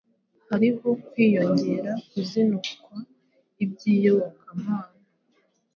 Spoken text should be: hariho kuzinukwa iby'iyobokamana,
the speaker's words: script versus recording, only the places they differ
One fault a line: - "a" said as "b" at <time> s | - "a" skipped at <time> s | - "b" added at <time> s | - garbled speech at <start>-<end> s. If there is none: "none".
- "kwiyongera" added at 1.1 s